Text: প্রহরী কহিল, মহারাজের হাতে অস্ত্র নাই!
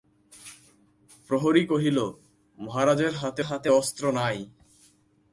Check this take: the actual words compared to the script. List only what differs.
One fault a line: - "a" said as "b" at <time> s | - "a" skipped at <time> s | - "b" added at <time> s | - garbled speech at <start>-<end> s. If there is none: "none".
- "হাতে" added at 3.4 s